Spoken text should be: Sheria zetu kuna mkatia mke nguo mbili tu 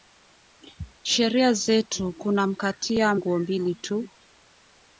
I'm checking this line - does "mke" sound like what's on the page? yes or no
no